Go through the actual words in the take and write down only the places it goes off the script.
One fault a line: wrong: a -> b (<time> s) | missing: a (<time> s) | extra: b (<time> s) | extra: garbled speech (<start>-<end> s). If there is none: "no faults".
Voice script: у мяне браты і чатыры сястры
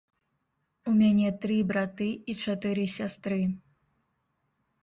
extra: тры (1.4 s)